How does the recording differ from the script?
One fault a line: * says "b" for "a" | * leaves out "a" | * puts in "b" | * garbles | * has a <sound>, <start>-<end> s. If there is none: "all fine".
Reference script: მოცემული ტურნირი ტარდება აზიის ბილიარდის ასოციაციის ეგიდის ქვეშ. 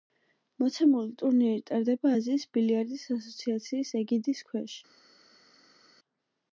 all fine